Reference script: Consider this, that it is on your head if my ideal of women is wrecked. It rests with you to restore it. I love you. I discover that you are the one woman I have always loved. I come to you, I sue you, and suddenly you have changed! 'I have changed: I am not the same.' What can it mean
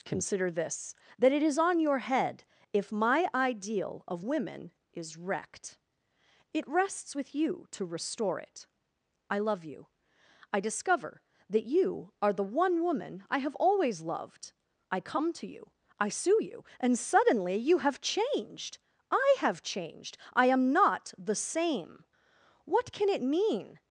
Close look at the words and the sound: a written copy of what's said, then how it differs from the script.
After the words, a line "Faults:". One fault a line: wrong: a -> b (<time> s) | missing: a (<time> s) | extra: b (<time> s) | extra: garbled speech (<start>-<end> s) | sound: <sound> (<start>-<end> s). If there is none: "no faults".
Consider this, that it is on your head if my ideal of women is wrecked. It rests with you to restore it. I love you. I discover that you are the one woman I have always loved. I come to you, I sue you, and suddenly you have changed! 'I have changed: I am not the same.' What can it mean
Faults:
no faults